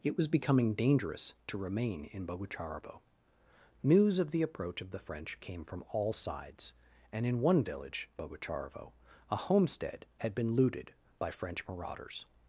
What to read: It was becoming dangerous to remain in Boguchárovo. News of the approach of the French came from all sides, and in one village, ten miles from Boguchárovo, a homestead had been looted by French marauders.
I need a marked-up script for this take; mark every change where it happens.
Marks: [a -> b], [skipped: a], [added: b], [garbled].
It was becoming dangerous to remain in Boguchárovo. News of the approach of the French came from all sides, and in one village, [skipped: ten miles from] Boguchárovo, a homestead had been looted by French marauders.